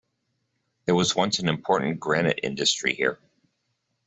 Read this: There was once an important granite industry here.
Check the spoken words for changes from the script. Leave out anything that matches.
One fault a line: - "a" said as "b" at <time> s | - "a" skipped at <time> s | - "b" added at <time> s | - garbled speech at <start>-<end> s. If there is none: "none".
none